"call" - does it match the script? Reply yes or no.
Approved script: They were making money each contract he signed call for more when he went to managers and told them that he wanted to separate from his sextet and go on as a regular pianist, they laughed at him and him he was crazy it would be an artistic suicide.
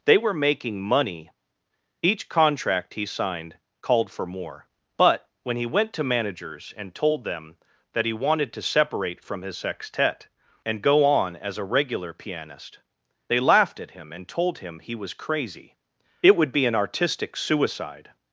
no